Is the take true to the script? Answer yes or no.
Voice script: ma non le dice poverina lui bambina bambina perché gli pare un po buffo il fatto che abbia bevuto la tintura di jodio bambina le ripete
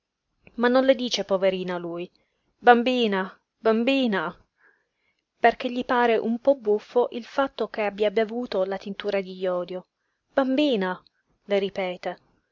yes